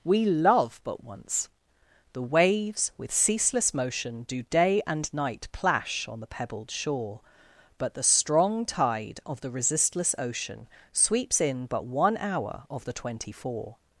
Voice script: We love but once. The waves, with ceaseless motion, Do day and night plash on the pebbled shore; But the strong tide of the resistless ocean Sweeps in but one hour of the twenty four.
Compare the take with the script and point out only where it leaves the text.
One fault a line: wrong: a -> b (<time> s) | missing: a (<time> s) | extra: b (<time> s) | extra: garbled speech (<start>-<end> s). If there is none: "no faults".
no faults